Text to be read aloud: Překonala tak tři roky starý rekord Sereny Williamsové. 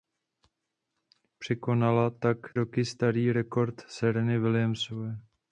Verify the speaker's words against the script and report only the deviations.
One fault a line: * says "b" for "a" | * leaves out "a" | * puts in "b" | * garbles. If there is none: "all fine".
* leaves out "tři"